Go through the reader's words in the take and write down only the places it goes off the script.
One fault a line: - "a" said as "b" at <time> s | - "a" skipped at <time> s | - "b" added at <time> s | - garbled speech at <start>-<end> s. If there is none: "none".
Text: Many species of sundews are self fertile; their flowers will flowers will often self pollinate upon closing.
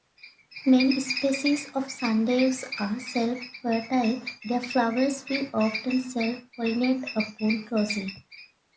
- "flowers will" skipped at 5.5 s